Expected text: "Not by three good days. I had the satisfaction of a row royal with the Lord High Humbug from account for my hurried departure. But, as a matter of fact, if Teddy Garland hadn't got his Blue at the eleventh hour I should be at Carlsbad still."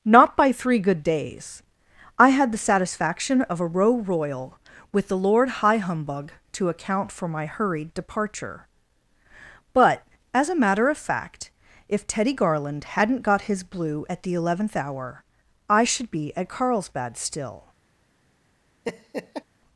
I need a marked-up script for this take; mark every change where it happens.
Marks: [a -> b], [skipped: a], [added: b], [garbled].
"Not by three good days. I had the satisfaction of a row royal with the Lord High Humbug [from -> to] account for my hurried departure. But, as a matter of fact, if Teddy Garland hadn't got his Blue at the eleventh hour I should be at Carlsbad still."